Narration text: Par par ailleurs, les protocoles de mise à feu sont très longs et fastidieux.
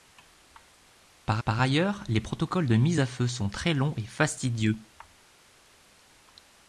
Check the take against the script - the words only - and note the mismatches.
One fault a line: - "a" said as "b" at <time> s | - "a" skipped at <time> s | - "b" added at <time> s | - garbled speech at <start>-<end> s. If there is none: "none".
none